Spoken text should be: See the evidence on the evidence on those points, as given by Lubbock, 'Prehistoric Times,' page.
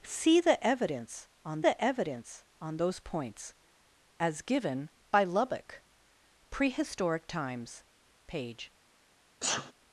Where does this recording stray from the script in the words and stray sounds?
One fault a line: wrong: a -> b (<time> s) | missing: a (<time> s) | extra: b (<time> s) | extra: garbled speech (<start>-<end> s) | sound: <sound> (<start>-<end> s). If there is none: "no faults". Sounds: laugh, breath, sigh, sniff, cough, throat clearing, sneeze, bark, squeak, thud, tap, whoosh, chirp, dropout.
sound: sneeze (9.4-9.7 s)